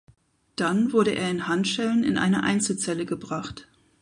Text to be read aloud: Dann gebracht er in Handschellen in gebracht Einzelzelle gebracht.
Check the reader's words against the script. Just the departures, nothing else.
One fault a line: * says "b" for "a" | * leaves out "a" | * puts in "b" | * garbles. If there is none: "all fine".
* says "wurde" for "gebracht"
* says "eine" for "gebracht"